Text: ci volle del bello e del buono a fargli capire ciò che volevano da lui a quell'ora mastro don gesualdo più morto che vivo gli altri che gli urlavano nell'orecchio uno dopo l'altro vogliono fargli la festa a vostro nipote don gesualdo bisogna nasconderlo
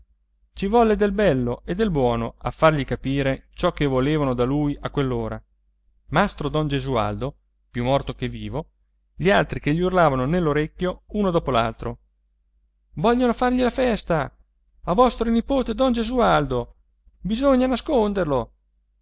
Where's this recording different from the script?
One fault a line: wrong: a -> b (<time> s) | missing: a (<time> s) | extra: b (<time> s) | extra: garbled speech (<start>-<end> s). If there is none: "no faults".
no faults